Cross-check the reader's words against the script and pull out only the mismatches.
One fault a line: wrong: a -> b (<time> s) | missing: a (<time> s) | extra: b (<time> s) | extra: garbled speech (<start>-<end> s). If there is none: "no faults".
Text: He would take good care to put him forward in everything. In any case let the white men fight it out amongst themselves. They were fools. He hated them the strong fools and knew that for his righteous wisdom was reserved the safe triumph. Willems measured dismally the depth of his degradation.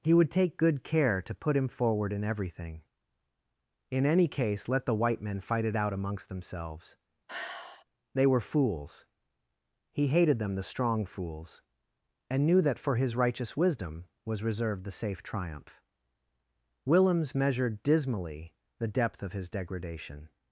no faults